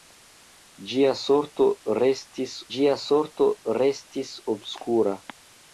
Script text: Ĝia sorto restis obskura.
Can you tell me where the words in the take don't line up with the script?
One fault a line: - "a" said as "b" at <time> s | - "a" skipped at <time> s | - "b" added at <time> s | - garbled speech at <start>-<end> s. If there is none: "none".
- "ĝia sorto restis" added at 2.8 s